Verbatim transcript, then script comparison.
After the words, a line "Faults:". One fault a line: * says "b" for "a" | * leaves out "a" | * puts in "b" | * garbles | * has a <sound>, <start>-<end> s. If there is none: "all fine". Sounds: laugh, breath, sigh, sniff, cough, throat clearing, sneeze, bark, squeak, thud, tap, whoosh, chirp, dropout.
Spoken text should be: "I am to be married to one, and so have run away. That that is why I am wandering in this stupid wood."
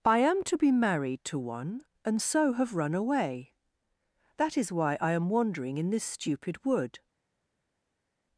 "I am to be married to one, and so have run away. That is why I am wandering in this stupid wood."
Faults:
* leaves out "that"